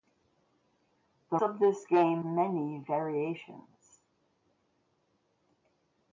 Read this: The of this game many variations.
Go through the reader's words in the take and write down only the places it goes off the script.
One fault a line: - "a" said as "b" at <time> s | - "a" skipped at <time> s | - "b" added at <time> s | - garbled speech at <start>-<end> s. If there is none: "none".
none